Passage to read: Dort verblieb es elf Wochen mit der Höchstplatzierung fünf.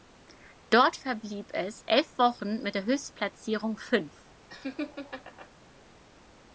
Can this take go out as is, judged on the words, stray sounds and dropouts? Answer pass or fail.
fail